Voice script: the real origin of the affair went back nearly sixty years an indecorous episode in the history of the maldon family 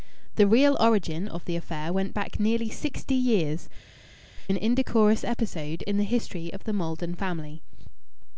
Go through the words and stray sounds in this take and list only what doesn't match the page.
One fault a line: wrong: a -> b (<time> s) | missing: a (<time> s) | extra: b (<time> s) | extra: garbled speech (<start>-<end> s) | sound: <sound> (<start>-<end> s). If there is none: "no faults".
no faults